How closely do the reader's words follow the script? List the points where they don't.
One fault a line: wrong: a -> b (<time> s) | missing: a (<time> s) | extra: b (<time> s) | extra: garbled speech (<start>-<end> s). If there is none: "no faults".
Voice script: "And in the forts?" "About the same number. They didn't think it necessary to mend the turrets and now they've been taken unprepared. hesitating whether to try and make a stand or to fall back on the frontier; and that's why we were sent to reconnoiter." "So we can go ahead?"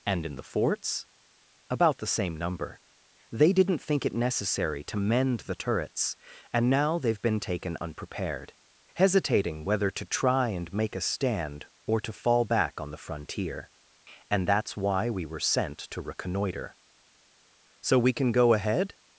no faults